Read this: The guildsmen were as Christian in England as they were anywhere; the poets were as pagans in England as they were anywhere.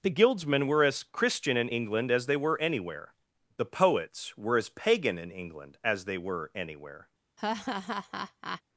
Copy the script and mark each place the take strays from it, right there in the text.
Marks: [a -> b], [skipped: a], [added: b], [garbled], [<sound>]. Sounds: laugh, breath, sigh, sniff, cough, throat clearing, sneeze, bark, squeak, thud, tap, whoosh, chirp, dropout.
The guildsmen were as Christian in England as they were anywhere; the poets were as [pagans -> pagan] in England as they were anywhere. [laugh]